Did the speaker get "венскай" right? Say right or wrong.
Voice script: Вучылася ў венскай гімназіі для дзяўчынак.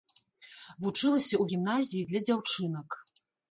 wrong